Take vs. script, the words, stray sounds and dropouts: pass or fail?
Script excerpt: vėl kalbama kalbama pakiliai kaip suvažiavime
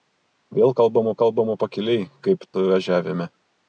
pass